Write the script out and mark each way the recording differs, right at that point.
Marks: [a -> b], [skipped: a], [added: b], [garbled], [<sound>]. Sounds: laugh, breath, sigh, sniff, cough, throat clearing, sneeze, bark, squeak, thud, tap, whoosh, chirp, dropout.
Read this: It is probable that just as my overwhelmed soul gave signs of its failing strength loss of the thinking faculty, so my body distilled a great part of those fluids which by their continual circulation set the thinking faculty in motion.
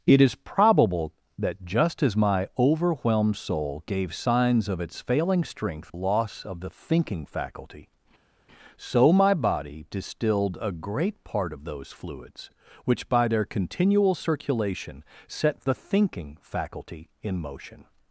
It is probable that just as my overwhelmed soul gave signs of its failing strength loss of the thinking faculty, so my body distilled a great part of those fluids which by their continual circulation set the thinking faculty in motion.